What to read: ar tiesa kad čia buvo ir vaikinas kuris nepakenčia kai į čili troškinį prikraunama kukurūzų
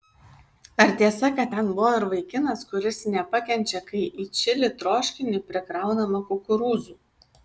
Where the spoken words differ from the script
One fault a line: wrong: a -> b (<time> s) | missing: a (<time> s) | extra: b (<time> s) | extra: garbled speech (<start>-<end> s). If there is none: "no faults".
wrong: čia -> ten (1.5 s)